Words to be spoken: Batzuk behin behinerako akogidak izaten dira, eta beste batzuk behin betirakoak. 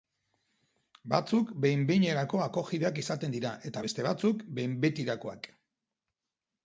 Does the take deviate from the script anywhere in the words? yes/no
no